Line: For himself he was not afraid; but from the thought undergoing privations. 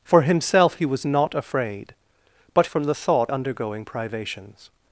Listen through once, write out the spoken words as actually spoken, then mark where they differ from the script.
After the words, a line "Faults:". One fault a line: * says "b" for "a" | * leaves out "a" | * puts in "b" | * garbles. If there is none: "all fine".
For himself he was not afraid; but from the thought undergoing privations.
Faults:
all fine